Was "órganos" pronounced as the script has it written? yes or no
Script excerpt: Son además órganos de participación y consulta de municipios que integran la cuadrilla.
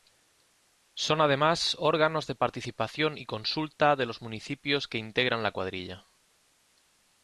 yes